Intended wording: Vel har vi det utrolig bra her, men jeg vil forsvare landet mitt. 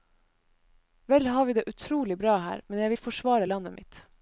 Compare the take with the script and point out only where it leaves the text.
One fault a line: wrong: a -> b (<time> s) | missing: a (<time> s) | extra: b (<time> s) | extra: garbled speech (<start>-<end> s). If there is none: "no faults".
no faults